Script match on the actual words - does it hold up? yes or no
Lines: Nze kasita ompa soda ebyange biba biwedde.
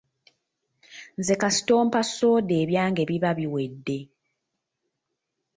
yes